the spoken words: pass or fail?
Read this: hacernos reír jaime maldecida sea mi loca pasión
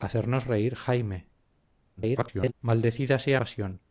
fail